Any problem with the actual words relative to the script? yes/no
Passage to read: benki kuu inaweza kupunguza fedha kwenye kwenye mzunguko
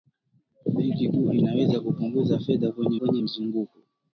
no